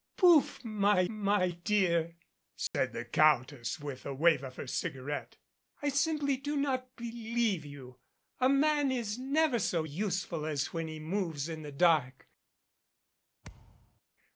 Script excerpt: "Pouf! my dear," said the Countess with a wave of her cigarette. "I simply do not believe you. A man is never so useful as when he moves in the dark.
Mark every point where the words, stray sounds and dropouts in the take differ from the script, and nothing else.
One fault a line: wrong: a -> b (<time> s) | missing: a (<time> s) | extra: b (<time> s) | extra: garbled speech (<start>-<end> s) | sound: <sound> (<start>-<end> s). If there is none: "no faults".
extra: my (1.1 s)
sound: dropout (2.7-2.7 s)
sound: thud (13.4-14.0 s)